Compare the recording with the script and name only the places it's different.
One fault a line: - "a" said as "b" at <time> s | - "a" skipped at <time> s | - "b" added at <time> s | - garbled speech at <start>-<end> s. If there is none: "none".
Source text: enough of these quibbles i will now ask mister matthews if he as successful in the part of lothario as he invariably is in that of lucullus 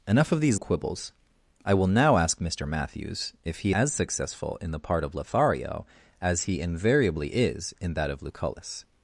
none